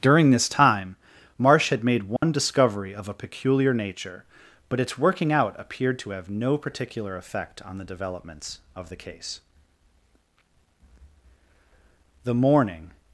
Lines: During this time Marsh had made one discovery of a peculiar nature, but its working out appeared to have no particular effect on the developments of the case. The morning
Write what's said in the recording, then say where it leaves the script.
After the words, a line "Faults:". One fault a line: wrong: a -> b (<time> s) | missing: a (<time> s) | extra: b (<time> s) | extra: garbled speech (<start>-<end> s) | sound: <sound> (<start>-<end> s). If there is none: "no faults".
During this time Marsh had made one discovery of a peculiar nature, but its working out appeared to have no particular effect on the developments of the case. The morning
Faults:
sound: dropout (2.2-2.2 s)